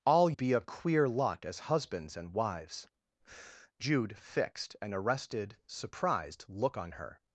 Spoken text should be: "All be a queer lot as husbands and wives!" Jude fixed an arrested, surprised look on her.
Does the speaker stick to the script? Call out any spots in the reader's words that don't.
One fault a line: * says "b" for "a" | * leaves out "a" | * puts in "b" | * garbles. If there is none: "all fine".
all fine